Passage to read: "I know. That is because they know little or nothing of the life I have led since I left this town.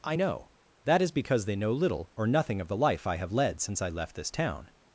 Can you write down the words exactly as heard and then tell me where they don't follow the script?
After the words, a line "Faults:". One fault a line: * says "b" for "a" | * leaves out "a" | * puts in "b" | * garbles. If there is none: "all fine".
"I know. That is because they know little or nothing of the life I have led since I left this town.
Faults:
all fine